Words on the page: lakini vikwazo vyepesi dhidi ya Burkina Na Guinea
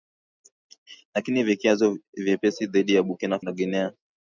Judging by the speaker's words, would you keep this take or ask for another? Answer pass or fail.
pass